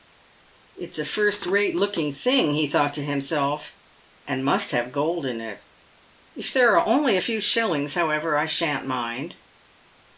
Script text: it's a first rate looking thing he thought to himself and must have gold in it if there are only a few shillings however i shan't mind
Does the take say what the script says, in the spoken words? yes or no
yes